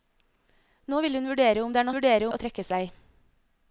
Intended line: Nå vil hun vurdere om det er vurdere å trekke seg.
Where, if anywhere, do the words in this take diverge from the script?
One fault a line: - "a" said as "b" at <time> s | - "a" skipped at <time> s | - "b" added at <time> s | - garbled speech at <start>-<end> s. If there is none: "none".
none